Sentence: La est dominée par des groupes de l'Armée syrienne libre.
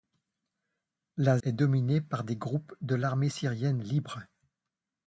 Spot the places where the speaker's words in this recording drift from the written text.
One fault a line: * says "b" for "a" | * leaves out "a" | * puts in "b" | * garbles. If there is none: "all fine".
all fine